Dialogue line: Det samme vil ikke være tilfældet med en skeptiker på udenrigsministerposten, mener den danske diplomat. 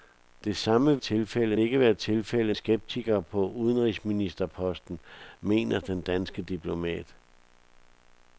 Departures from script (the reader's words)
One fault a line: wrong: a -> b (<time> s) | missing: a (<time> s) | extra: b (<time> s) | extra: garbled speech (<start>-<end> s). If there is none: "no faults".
wrong: vil -> tilfældet (1.0 s)
missing: med en (2.6 s)